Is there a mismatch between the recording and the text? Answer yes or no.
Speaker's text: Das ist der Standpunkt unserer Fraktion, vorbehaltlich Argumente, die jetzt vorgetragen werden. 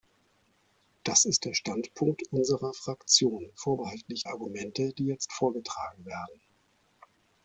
no